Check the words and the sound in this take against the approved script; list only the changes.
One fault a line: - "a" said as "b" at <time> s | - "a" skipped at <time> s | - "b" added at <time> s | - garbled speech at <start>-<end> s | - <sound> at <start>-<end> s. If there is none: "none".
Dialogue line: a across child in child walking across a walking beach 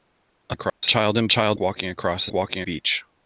- dropout at 0.7-0.8 s